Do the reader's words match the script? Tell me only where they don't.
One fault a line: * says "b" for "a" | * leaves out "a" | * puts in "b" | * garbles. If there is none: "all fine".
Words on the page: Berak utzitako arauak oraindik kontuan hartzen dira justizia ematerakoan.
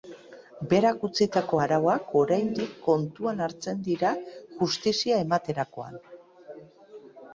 all fine